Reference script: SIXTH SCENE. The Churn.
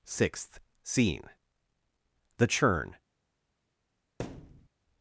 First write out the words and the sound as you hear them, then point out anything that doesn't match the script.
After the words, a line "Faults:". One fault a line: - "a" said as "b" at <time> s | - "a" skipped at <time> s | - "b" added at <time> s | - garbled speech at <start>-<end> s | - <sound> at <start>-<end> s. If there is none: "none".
SIXTH SCENE. The Churn.
Faults:
- thud at 4.2-4.7 s